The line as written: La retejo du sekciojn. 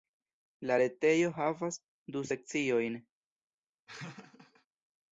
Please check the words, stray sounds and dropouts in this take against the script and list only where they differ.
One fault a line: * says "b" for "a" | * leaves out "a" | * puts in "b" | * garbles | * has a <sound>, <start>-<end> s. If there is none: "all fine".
* puts in "havas"
* has a laugh, 3.9-4.7 s